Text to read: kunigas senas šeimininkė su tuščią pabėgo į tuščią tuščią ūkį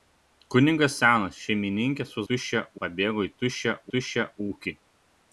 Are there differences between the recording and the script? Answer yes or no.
no